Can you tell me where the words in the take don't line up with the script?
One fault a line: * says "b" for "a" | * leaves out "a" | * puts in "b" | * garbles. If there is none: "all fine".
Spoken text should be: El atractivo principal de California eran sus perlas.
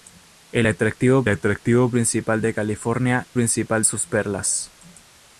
* puts in "atractivo"
* says "principal" for "eran"